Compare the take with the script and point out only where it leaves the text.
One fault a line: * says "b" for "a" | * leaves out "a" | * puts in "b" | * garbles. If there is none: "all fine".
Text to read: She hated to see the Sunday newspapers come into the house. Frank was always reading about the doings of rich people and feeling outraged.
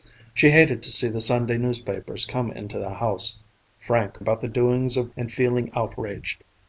* leaves out "was always reading"
* leaves out "rich people"